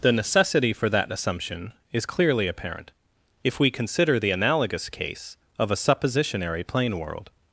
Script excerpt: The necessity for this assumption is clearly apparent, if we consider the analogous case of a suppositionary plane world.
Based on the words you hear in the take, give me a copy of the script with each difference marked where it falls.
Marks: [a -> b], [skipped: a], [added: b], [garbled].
The necessity for [this -> that] assumption is clearly apparent, if we consider the analogous case of a suppositionary plane world.